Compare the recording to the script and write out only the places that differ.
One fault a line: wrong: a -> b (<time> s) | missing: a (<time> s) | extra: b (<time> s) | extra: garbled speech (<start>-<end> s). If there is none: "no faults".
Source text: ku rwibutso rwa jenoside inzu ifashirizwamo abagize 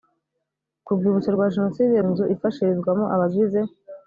no faults